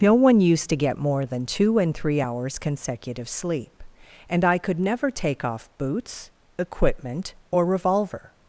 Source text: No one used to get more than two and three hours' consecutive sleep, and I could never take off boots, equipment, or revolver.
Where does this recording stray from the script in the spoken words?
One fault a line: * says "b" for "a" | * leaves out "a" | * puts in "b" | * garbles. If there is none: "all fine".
all fine